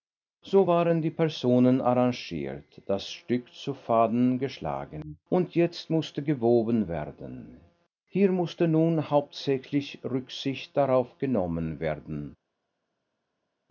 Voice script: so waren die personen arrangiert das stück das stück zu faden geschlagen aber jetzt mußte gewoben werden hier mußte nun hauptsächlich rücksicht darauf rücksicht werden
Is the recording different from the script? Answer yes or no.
yes